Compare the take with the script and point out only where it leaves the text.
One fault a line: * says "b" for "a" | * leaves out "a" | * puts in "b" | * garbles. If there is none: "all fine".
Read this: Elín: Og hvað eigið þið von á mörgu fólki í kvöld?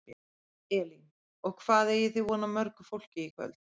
all fine